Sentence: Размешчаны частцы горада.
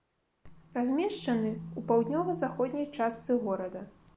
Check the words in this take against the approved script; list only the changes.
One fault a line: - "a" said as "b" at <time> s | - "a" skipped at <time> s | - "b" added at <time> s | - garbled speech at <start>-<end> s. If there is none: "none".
- "ў паўднёва заходняй" added at 1.5 s